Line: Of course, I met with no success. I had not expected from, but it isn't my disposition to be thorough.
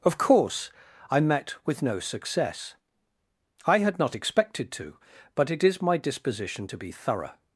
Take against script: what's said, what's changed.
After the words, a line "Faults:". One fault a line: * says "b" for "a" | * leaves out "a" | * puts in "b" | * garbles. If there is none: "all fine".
Of course, I met with no success. I had not expected to, but it is my disposition to be thorough.
Faults:
* says "to" for "from"
* says "is" for "isn't"